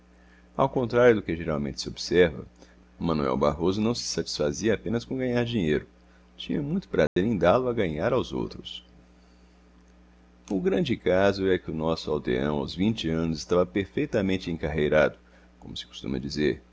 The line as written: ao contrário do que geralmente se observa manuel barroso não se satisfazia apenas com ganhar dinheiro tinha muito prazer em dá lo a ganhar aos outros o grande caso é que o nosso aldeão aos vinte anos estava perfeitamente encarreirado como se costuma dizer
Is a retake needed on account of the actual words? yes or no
no